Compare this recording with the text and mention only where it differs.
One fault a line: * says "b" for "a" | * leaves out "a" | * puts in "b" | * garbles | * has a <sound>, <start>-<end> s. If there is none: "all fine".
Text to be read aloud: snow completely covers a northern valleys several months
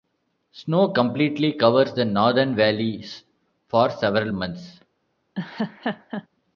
* says "the" for "a"
* puts in "for"
* has a laugh, 5.3-6.3 s